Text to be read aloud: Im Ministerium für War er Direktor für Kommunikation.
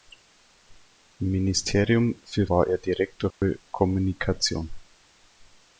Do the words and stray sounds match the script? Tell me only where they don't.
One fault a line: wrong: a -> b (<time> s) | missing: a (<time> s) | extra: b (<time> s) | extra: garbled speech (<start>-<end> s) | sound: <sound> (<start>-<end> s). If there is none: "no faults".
sound: dropout (3.3-3.4 s)